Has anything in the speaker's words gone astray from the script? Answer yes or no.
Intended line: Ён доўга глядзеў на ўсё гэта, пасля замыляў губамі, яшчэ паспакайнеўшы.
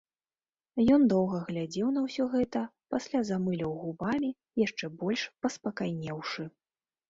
yes